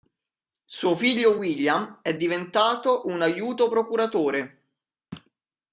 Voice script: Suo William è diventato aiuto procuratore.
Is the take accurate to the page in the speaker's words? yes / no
no